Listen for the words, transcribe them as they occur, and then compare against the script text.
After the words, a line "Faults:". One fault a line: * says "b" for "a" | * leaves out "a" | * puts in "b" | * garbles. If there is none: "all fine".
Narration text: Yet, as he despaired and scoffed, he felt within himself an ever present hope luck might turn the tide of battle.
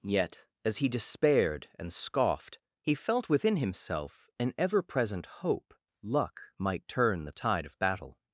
Yet, as he despaired and scoffed, he felt within himself an ever present hope luck might turn the tide of battle.
Faults:
all fine